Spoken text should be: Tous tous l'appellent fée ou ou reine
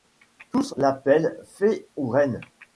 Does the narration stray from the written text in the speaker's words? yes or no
yes